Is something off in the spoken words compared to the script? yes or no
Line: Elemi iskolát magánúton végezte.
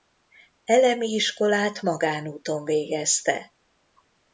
no